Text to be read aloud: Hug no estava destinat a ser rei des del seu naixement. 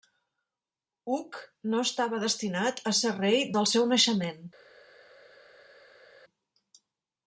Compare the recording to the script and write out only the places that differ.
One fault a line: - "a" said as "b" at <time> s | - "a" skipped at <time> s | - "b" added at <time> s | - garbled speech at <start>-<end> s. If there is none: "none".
- "des" skipped at 3.5 s